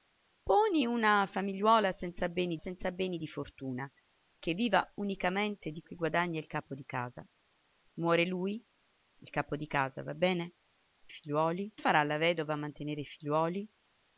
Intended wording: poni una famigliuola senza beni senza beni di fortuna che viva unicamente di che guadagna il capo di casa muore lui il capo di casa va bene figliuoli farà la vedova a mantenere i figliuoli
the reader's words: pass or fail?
pass